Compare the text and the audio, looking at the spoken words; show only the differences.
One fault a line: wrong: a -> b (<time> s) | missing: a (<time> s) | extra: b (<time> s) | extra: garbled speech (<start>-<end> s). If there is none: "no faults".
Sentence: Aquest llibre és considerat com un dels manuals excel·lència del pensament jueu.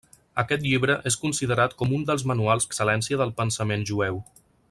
no faults